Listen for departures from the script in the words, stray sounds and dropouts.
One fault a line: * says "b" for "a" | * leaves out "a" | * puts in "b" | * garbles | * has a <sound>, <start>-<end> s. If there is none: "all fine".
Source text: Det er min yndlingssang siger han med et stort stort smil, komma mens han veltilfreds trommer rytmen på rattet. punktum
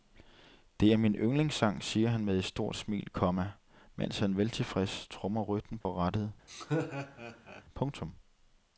* leaves out "stort"
* has a dropout, 5.8-5.9 s
* has a laugh, 6.5-7.6 s